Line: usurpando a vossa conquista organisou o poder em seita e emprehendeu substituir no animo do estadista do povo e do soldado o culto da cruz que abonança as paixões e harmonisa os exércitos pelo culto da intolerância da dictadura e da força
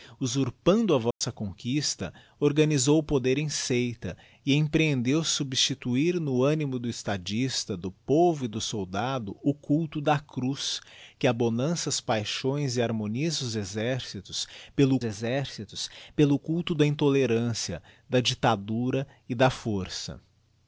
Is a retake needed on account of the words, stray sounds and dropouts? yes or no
yes